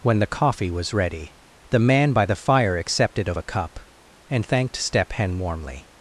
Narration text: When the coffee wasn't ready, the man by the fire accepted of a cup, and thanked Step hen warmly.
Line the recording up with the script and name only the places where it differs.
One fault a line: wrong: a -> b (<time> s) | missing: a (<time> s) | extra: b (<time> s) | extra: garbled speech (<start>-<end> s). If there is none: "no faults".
wrong: wasn't -> was (0.7 s)